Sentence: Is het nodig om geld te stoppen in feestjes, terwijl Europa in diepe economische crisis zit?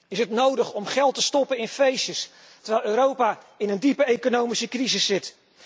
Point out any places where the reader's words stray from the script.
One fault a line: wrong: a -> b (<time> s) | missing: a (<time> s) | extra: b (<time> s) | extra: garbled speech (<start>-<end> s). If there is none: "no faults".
extra: een (3.7 s)